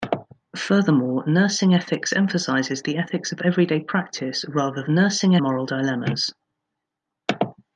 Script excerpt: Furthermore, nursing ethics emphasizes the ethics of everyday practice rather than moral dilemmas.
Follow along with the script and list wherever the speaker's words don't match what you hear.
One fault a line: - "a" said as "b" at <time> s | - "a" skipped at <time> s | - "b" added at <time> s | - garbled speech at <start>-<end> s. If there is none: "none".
- "than" said as "nursing" at 4.9 s